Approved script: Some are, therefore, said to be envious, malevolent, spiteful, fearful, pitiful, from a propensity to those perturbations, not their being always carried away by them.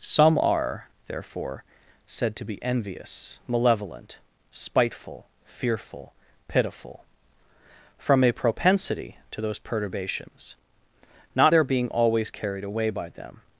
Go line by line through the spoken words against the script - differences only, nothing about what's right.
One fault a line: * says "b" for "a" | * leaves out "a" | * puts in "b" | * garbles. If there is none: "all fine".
all fine